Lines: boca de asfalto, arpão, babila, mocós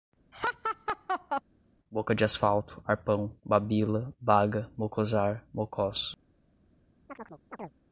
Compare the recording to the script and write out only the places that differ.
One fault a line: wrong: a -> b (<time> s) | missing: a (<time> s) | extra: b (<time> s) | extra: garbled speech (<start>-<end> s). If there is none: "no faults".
extra: baga mocosar (4.2 s)